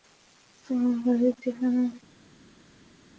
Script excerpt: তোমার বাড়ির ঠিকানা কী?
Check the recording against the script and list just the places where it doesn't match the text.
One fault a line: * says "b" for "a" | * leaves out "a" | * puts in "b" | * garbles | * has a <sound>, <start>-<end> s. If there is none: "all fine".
all fine